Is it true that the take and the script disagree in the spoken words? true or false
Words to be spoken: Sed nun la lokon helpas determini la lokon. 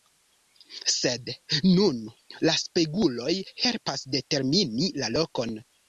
true